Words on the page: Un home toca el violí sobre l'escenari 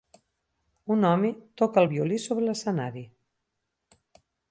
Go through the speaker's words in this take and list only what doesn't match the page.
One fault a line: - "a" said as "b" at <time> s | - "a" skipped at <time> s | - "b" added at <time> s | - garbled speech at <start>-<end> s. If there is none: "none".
none